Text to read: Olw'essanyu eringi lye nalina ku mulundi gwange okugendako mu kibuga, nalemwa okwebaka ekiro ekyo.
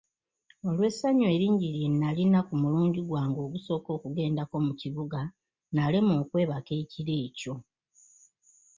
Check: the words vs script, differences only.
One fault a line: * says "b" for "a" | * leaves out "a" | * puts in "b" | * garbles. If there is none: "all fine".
* puts in "ogusooka"